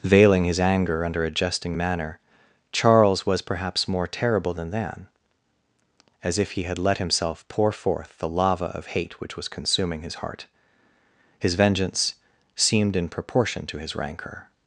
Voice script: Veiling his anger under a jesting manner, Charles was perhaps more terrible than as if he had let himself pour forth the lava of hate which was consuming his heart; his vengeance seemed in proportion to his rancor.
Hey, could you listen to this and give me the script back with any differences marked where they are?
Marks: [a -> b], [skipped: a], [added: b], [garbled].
Veiling his anger under a jesting manner, Charles was perhaps more terrible than [added: than] as if he had let himself pour forth the lava of hate which was consuming his heart; his vengeance seemed in proportion to his rancor.